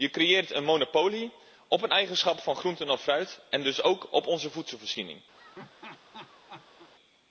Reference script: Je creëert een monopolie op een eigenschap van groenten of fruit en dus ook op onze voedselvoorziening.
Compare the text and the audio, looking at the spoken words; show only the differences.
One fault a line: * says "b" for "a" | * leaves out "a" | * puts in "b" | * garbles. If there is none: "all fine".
all fine